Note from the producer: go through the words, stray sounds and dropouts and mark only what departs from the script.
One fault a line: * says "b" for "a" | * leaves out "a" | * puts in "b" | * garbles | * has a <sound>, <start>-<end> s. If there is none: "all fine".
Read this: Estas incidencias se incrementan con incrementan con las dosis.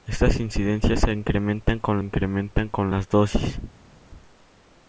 all fine